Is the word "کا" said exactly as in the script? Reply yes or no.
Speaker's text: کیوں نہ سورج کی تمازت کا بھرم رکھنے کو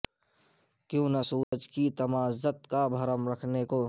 yes